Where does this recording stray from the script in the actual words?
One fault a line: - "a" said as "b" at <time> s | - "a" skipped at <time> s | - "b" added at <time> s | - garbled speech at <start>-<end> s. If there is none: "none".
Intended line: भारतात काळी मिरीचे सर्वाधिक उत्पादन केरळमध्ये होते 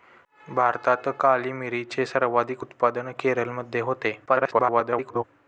- garbled speech at 4.3-5.2 s